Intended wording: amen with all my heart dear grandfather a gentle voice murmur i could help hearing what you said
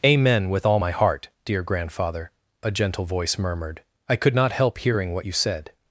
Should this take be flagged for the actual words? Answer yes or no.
yes